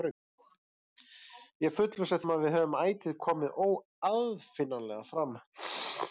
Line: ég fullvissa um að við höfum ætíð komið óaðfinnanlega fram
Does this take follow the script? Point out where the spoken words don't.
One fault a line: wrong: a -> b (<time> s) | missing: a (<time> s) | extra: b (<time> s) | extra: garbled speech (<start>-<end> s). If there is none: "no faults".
no faults